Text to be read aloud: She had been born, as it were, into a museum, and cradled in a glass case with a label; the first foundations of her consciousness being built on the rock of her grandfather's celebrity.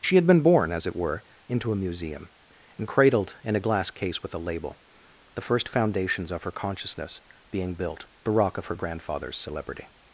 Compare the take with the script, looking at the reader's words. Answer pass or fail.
fail